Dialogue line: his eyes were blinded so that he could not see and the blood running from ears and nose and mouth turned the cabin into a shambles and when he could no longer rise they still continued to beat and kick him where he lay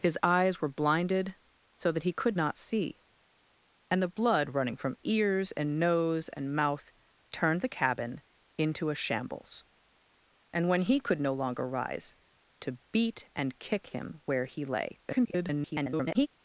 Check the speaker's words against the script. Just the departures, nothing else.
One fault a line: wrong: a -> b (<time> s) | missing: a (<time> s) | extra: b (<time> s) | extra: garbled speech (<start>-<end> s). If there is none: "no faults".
missing: they still continued (12.2 s)
extra: garbled speech (15.0-16.3 s)